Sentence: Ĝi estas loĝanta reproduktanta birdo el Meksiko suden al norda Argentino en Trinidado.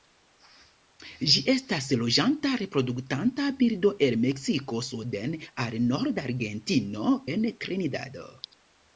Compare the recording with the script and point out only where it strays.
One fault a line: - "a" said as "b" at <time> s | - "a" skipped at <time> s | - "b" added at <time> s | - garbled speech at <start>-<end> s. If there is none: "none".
none